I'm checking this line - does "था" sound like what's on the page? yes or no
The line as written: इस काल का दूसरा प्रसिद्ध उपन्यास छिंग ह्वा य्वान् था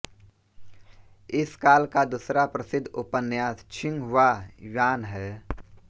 no